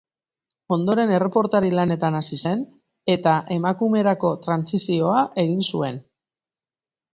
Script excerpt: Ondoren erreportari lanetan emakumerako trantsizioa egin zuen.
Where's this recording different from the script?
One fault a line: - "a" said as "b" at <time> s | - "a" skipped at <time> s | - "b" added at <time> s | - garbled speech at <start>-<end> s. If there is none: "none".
- "hasi zen eta" added at 2.2 s